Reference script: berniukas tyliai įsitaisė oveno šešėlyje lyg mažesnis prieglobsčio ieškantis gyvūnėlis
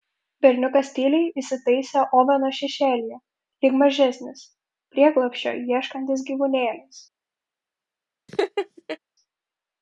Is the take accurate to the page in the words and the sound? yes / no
no